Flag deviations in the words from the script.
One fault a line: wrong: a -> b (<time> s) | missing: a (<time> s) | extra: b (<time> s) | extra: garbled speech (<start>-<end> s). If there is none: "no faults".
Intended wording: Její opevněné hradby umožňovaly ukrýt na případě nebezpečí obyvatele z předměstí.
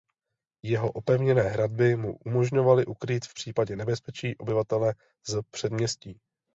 wrong: Její -> Jeho (0.6 s)
extra: mu (1.9 s)
wrong: na -> v (3.3 s)